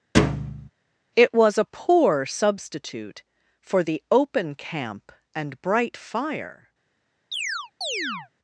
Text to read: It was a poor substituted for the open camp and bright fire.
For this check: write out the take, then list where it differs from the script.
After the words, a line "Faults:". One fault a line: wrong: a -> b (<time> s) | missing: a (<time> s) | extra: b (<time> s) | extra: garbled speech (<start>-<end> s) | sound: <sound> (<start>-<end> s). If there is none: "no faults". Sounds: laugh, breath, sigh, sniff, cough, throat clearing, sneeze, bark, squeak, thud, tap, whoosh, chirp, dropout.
It was a poor substitute for the open camp and bright fire.
Faults:
sound: thud (0.1-0.7 s)
wrong: substituted -> substitute (2.3 s)
sound: chirp (7.3-8.3 s)